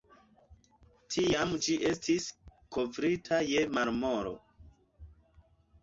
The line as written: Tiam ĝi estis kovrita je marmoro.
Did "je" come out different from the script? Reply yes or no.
no